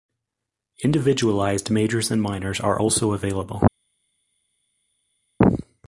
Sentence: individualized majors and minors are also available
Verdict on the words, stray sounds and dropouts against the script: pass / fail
pass